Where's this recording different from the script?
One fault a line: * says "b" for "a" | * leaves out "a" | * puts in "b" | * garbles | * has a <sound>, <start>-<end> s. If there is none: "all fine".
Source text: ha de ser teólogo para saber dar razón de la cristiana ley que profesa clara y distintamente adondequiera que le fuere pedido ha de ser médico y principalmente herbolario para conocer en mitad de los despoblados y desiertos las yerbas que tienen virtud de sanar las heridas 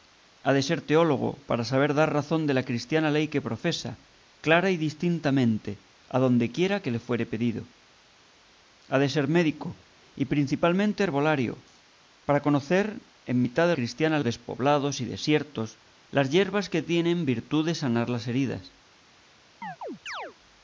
* says "cristiana" for "los"
* has a chirp, 19.6-20.4 s